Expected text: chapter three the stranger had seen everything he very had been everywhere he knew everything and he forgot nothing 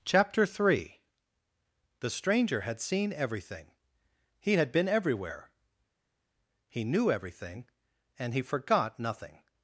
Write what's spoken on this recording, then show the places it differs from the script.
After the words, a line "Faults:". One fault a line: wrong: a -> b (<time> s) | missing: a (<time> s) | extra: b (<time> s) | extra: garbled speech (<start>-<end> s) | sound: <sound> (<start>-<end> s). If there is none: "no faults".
chapter three the stranger had seen everything he had been everywhere he knew everything and he forgot nothing
Faults:
missing: very (4.5 s)